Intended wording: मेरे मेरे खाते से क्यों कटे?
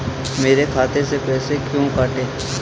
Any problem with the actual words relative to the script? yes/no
yes